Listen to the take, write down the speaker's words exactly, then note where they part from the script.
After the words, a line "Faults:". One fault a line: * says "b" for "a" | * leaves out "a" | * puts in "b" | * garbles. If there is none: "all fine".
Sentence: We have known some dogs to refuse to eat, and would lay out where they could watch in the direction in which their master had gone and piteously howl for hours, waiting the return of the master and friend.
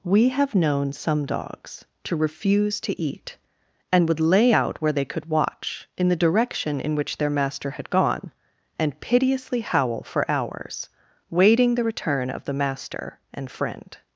We have known some dogs to refuse to eat, and would lay out where they could watch in the direction in which their master had gone and piteously howl for hours, waiting the return of the master and friend.
Faults:
all fine